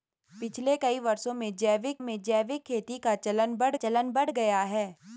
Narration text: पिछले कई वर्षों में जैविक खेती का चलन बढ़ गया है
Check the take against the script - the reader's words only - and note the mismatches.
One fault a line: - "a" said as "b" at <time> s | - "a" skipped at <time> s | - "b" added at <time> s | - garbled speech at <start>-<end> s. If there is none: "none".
- "में जैविक" added at 2.0 s
- "चलन बढ़" added at 3.8 s